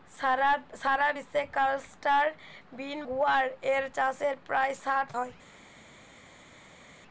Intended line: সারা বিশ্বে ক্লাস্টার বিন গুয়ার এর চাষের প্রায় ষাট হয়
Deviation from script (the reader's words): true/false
false